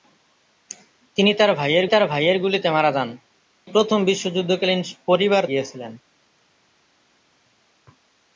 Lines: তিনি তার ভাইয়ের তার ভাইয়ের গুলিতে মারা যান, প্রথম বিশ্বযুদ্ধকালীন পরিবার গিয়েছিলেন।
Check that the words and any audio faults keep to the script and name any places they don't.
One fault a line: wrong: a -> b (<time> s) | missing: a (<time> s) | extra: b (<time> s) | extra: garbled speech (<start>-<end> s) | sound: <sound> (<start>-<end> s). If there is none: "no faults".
no faults